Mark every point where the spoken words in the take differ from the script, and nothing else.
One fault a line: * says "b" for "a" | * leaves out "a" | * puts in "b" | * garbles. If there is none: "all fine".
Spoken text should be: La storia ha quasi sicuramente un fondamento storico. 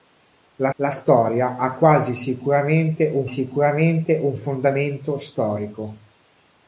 * puts in "la"
* puts in "sicuramente un"